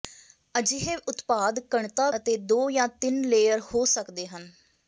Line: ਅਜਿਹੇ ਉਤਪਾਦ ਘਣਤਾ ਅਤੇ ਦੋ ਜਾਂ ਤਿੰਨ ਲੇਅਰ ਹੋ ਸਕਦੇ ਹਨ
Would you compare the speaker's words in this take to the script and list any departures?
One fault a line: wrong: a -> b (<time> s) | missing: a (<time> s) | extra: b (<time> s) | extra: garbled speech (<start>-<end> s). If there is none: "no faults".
no faults